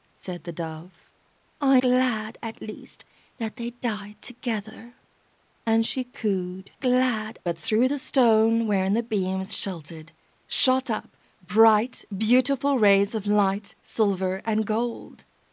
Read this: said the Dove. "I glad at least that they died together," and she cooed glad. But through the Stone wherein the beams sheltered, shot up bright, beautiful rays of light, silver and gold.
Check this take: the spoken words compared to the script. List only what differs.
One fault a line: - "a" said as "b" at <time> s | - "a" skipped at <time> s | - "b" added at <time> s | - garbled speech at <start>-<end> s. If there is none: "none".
none